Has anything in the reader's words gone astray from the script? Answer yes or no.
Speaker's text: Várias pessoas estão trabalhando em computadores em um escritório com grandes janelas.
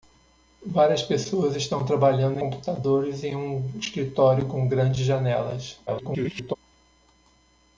yes